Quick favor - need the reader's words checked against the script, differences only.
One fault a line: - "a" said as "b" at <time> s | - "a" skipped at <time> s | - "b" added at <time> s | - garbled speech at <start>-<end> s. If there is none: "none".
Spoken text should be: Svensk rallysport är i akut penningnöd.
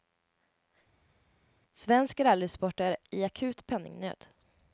none